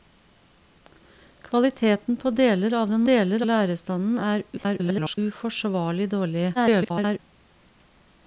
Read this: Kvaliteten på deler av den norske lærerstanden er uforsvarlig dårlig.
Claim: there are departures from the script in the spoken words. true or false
true